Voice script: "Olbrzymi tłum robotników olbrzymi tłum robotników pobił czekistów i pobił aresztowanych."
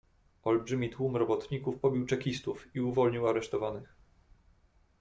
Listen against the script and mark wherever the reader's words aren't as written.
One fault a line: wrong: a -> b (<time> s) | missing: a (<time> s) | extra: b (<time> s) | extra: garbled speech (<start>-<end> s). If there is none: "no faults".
missing: olbrzymi tłum robotników (1.8 s)
wrong: pobił -> uwolnił (2.8 s)